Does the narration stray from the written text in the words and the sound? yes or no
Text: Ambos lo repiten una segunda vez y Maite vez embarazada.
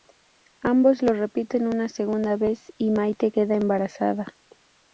yes